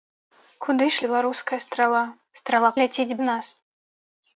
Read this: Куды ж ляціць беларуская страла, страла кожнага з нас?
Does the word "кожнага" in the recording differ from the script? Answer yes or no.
yes